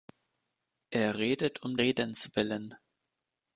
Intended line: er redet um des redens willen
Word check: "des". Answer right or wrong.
wrong